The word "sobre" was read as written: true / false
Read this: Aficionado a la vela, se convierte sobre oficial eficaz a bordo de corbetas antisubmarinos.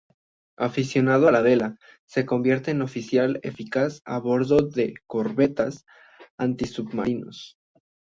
false